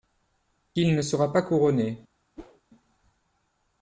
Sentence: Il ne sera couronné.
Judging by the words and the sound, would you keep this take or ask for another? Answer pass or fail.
fail